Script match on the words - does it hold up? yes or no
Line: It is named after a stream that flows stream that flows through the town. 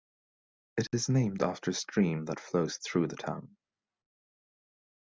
no